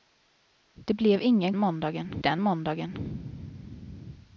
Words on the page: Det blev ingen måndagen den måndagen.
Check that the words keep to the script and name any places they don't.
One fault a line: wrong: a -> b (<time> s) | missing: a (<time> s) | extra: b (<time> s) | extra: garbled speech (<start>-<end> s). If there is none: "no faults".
no faults